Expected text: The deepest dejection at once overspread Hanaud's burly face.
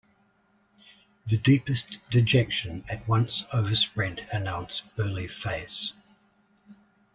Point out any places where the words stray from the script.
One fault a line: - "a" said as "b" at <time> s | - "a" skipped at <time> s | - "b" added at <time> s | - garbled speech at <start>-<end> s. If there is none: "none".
none